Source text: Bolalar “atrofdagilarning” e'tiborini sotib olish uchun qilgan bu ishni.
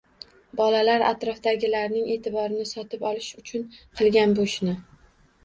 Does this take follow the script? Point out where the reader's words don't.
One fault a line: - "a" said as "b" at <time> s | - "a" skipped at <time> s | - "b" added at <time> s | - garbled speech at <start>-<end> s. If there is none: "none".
none